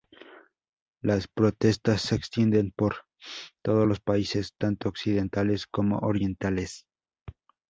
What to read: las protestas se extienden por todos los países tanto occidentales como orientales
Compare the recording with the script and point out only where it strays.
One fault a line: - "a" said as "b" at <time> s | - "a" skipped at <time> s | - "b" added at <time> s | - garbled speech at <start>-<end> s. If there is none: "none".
none